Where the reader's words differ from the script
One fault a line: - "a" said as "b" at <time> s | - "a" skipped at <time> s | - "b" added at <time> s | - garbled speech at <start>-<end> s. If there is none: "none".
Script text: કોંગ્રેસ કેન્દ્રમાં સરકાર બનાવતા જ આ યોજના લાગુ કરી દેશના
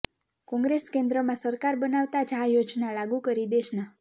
none